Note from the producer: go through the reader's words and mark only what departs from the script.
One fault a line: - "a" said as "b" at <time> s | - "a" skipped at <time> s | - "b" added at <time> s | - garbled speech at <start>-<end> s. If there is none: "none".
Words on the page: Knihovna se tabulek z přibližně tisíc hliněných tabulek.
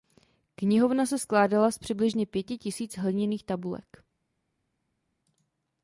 - "tabulek" said as "skládala" at 1.2 s
- "pěti" added at 2.3 s